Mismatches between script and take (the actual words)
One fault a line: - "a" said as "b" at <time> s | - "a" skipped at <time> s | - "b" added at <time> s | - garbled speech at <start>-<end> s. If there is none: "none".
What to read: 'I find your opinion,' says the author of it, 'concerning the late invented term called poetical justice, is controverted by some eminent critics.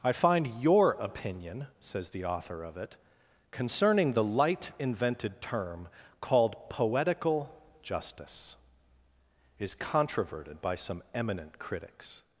- "late" said as "light" at 4.2 s